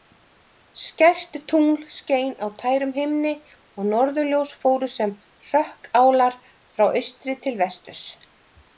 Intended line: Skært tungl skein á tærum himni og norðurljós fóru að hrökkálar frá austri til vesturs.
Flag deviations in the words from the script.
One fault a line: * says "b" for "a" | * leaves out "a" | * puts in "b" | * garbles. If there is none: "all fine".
* says "sem" for "að"